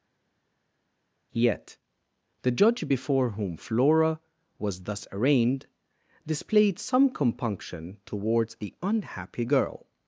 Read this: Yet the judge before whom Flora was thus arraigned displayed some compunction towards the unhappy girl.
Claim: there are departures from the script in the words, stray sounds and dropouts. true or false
false